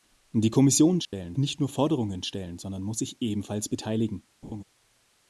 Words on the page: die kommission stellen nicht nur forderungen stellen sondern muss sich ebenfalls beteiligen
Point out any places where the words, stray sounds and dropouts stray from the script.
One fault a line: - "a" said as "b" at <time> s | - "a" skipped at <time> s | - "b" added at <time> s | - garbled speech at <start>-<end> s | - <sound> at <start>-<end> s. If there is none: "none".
- dropout at 1.0-1.1 s
- laugh at 4.4-4.6 s